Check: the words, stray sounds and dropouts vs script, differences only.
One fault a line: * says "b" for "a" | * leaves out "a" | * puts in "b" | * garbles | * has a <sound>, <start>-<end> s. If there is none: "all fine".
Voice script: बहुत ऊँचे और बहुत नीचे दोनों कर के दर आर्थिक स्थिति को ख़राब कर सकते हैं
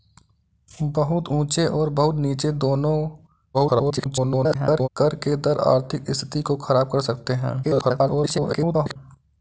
* garbles
* garbles